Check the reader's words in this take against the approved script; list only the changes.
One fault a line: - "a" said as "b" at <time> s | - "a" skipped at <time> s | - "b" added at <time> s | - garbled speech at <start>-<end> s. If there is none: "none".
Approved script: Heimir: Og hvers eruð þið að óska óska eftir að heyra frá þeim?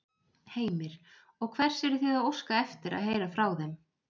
- "óska" skipped at 2.6 s